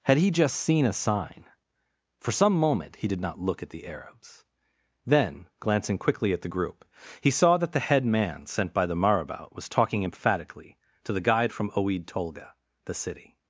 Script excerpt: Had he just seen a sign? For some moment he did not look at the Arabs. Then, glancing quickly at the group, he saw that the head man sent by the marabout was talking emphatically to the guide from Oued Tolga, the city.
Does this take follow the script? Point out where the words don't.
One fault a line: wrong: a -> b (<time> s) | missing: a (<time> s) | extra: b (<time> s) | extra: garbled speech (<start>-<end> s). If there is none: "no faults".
no faults